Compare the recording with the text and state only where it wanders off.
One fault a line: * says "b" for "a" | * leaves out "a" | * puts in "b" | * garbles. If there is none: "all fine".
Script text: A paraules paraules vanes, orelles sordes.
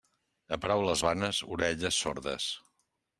* leaves out "paraules"